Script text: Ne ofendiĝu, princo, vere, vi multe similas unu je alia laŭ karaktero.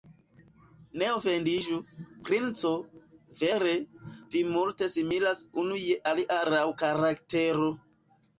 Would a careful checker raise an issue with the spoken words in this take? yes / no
no